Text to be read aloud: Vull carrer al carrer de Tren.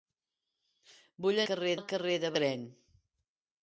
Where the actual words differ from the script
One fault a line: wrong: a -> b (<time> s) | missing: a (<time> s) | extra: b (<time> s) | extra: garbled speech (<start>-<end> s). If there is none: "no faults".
no faults